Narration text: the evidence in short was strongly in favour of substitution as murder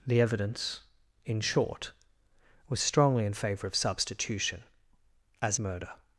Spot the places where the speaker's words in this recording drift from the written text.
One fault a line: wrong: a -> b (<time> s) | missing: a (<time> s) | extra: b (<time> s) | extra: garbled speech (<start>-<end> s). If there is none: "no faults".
no faults